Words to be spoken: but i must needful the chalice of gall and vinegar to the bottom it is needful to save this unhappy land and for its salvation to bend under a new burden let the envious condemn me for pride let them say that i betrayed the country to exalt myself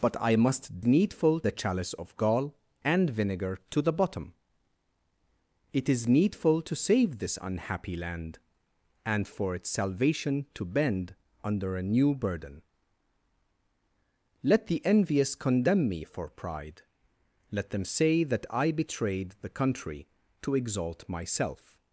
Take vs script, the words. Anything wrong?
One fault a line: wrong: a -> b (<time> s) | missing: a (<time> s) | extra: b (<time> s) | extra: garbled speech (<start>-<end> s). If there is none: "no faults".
no faults